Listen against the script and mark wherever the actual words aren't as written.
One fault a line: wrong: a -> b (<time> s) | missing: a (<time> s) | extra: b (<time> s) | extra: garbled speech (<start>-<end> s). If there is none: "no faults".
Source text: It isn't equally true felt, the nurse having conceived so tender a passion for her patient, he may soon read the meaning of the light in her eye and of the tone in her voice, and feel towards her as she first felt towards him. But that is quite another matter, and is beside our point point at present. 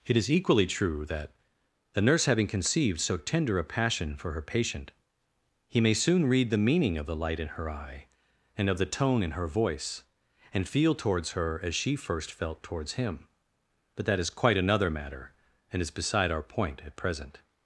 wrong: isn't -> is (0.2 s)
wrong: felt -> that (1.1 s)
missing: point (16.8 s)